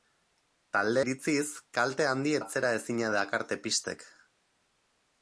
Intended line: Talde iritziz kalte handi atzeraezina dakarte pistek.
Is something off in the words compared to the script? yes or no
no